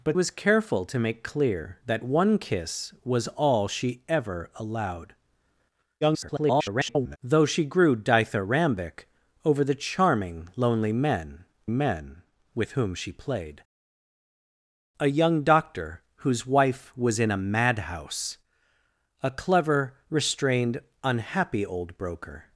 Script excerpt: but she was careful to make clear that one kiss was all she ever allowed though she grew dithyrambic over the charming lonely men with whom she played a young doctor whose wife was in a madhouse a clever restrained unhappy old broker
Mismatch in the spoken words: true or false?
true